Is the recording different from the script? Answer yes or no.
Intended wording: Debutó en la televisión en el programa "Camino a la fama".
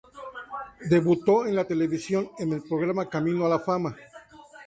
no